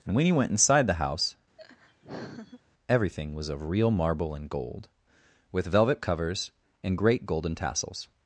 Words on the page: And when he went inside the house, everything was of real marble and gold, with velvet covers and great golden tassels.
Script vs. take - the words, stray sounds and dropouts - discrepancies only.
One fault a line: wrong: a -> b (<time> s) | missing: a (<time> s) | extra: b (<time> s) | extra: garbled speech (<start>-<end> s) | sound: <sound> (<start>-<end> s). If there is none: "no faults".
sound: laugh (1.6-2.6 s)